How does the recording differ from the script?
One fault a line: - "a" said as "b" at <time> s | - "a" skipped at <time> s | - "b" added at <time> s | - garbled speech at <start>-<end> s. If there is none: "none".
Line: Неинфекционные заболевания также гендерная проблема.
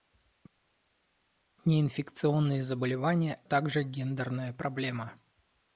none